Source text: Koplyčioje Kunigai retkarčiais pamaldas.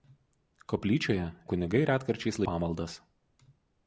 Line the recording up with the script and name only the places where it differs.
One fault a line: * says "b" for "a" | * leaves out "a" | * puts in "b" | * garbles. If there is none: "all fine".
all fine